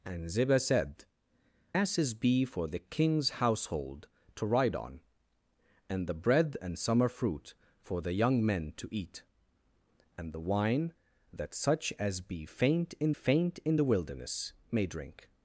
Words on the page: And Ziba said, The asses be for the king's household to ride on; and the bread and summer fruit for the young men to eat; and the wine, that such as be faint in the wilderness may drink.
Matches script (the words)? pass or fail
fail